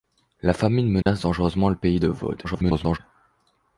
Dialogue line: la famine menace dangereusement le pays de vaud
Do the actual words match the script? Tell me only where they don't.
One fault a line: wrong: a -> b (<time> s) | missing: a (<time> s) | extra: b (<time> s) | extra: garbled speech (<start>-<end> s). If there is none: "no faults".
extra: garbled speech (2.4-3.0 s)